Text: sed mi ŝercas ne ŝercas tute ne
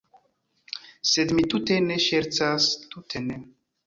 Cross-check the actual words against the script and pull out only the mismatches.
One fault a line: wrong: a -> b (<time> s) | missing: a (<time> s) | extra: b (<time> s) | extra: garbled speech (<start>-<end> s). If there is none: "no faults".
wrong: ŝercas -> tute (1.5 s)